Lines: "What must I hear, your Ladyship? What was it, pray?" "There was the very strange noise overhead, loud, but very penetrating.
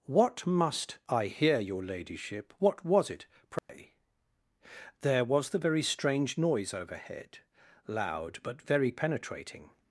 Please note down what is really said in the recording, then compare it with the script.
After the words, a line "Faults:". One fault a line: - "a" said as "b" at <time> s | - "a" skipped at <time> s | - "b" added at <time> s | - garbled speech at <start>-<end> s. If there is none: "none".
"What must I hear, your Ladyship? What was it, pray?" "There was the very strange noise overhead, loud, but very penetrating.
Faults:
none